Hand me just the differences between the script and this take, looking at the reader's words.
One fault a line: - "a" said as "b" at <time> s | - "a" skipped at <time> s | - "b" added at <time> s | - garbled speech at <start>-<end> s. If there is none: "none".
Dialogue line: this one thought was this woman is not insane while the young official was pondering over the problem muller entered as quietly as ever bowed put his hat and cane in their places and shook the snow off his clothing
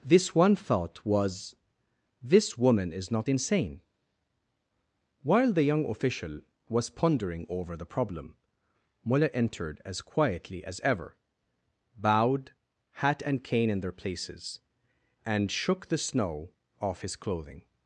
- "put his" skipped at 12.5 s